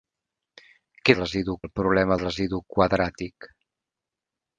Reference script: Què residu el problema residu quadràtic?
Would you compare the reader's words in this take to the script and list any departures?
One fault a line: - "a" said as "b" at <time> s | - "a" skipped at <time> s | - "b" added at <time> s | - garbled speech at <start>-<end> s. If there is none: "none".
none